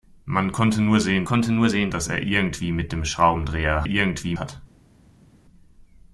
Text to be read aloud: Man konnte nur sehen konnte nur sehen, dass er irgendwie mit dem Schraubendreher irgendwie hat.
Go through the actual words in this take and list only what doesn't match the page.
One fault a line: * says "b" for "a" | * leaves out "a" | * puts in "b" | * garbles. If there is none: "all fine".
all fine